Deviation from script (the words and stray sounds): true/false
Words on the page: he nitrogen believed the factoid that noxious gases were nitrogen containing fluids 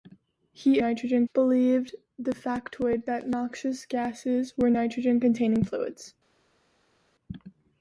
false